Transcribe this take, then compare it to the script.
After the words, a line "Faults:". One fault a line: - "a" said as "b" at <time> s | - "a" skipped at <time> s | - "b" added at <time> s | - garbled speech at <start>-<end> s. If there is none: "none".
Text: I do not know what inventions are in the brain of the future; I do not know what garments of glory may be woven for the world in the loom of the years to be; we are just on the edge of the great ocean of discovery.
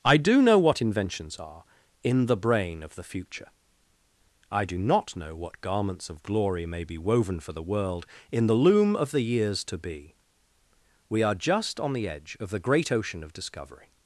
I do know what inventions are in the brain of the future; I do not know what garments of glory may be woven for the world in the loom of the years to be; we are just on the edge of the great ocean of discovery.
Faults:
- "not" skipped at 0.4 s